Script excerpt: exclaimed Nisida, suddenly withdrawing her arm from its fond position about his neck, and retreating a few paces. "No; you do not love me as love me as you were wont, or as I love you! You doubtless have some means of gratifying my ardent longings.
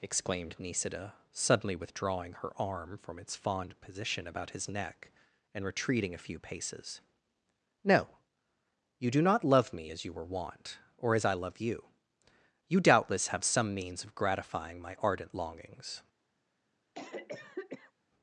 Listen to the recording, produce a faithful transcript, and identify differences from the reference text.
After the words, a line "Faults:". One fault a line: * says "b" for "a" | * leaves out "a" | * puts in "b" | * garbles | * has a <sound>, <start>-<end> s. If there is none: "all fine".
exclaimed Nisida, suddenly withdrawing her arm from its fond position about his neck, and retreating a few paces. "No; you do not love me as you were wont, or as I love you! You doubtless have some means of gratifying my ardent longings.
Faults:
* leaves out "love me as"
* has a cough, 16.9-17.9 s